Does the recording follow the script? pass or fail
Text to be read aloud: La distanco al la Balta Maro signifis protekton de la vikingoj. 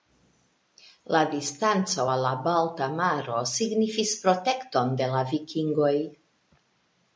pass